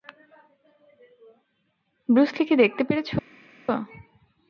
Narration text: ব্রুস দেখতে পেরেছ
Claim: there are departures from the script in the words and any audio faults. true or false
true